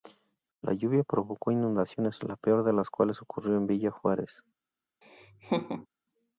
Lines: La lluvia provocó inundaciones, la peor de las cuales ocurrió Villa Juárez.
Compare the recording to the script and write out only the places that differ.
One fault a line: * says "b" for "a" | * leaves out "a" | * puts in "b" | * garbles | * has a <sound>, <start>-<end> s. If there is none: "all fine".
* puts in "en"
* has a laugh, 5.0-5.9 s